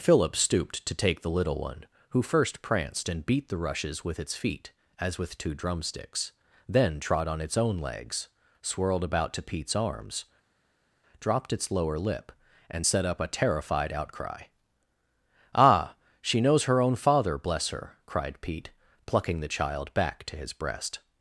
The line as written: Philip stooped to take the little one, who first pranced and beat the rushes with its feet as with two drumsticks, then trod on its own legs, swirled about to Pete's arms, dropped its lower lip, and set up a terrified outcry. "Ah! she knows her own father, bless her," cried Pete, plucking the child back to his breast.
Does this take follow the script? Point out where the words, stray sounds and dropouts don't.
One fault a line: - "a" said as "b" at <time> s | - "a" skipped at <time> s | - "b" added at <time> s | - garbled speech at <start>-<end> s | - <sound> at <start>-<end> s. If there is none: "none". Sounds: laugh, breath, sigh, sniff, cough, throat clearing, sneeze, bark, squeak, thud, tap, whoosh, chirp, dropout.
none